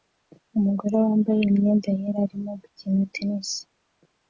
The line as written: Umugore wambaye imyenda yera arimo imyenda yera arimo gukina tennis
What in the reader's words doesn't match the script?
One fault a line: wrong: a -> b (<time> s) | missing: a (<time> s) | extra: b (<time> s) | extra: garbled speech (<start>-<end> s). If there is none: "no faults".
missing: imyenda yera arimo (2.5 s)